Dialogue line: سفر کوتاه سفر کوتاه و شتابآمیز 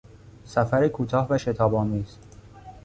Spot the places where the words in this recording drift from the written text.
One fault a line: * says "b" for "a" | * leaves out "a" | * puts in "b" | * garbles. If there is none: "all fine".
* leaves out "سفر کوتاه"